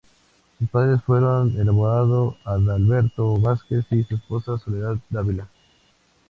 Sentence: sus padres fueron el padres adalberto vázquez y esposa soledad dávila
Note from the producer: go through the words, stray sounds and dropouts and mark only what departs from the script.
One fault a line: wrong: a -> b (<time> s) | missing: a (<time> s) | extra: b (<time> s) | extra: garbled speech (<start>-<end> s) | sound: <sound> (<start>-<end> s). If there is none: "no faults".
wrong: padres -> abogado (1.7 s)
extra: su (4.0 s)